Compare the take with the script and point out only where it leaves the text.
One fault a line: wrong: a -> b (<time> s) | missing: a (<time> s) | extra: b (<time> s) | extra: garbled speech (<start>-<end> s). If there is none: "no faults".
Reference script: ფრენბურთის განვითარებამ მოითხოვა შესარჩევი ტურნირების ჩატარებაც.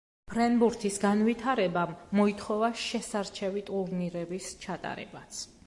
no faults